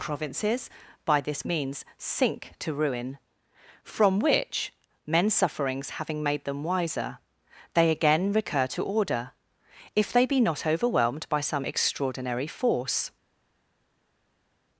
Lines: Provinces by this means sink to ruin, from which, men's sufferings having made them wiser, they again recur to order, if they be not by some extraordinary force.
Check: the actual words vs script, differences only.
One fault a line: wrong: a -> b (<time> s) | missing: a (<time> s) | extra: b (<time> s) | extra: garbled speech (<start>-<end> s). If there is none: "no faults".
extra: overwhelmed (10.7 s)